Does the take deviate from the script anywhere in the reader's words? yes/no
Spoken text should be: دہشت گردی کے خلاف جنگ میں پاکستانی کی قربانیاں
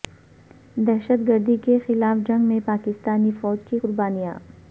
yes